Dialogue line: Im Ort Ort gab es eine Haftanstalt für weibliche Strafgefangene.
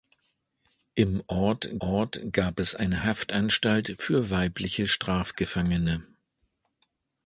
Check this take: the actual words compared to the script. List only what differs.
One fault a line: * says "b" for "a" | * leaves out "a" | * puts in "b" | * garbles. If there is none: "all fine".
all fine